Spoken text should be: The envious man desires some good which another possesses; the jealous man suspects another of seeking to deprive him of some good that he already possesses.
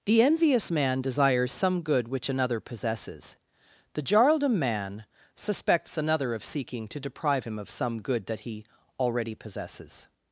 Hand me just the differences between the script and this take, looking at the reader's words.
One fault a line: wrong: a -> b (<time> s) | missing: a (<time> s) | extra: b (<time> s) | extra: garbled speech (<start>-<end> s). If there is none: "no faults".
wrong: jealous -> jarldom (4.0 s)